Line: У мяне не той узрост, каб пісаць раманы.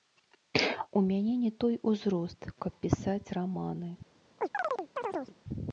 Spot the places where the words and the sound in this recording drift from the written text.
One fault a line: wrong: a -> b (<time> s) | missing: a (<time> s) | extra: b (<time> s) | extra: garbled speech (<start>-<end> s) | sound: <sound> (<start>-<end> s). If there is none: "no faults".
sound: chirp (4.4-5.4 s)